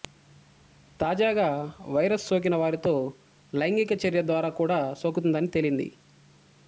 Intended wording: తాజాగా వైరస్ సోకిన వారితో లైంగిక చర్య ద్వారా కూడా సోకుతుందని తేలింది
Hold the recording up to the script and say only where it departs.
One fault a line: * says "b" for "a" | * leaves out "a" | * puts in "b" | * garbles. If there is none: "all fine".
all fine